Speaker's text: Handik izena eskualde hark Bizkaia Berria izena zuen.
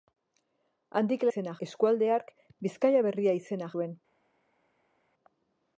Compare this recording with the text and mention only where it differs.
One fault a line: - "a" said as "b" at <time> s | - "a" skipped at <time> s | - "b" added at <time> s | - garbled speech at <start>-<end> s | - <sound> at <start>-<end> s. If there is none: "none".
none